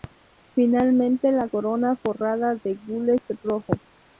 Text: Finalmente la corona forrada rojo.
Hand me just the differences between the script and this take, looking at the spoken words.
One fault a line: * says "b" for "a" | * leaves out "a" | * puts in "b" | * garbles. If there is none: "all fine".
* puts in "de gules"